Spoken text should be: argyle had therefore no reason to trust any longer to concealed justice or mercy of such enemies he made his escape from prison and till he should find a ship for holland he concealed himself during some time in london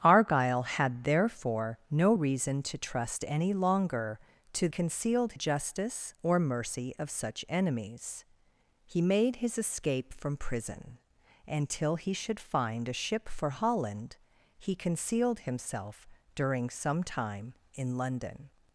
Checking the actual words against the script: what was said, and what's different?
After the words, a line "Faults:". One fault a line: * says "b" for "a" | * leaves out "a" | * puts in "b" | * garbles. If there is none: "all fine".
argyle had therefore no reason to trust any longer to concealed justice or mercy of such enemies he made his escape from prison and till he should find a ship for holland he concealed himself during some time in london
Faults:
all fine